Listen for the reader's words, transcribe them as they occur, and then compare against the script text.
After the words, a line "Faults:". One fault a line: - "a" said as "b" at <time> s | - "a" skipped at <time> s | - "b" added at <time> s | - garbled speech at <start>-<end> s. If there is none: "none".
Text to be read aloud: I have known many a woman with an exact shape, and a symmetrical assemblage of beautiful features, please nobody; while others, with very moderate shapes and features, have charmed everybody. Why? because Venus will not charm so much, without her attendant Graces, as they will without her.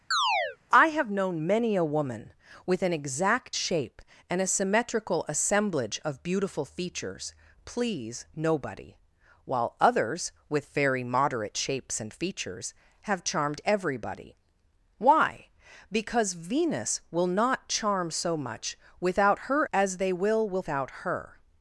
I have known many a woman with an exact shape, and a symmetrical assemblage of beautiful features, please nobody; while others, with very moderate shapes and features, have charmed everybody. Why? because Venus will not charm so much, without her as they will without her.
Faults:
- "attendant Graces" skipped at 19.7 s